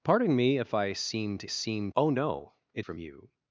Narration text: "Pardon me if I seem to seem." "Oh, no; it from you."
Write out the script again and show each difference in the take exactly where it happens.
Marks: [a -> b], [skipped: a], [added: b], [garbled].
"Pardon me if I seem to seem." "Oh, no; it from you."